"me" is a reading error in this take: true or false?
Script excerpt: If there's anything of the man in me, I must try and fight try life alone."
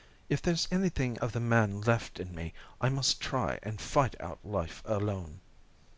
false